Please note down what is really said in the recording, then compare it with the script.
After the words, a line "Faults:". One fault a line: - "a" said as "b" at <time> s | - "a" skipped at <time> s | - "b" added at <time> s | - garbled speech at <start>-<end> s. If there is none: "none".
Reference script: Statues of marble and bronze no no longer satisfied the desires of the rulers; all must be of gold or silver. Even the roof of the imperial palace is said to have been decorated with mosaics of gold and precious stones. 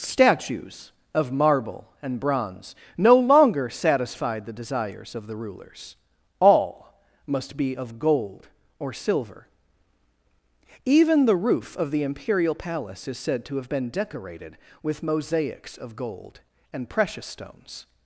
Statues of marble and bronze no longer satisfied the desires of the rulers; all must be of gold or silver. Even the roof of the imperial palace is said to have been decorated with mosaics of gold and precious stones.
Faults:
- "no" skipped at 3.1 s